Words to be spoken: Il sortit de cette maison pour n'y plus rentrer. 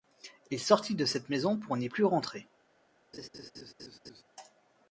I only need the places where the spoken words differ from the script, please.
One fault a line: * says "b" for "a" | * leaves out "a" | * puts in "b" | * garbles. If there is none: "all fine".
all fine